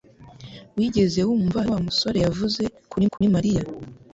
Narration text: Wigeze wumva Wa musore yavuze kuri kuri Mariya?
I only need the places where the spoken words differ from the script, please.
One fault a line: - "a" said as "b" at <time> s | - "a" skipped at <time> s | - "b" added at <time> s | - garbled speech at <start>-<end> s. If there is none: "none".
none